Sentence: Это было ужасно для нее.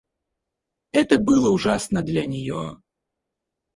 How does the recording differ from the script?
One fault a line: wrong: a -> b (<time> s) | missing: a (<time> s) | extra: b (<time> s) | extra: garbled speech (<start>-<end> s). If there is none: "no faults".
no faults